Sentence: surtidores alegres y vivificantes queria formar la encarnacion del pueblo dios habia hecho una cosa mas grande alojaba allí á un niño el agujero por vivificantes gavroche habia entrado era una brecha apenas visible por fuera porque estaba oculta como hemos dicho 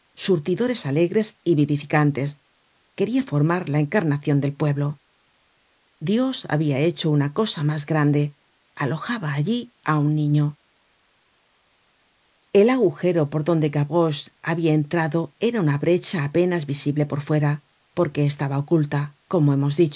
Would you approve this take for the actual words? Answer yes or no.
no